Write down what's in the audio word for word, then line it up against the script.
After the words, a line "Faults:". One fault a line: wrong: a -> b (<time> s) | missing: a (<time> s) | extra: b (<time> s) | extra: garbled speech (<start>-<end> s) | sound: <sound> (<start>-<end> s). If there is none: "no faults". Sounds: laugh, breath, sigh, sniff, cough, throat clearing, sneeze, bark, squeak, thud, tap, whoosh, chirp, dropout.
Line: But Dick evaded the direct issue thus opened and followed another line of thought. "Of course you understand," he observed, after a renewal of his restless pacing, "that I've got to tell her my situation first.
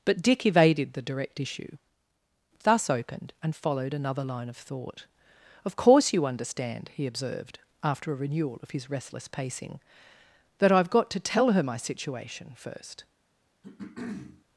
But Dick evaded the direct issue thus opened and followed another line of thought. "Of course you understand," he observed, after a renewal of his restless pacing, "that I've got to tell her my situation first.
Faults:
sound: throat clearing (13.6-14.4 s)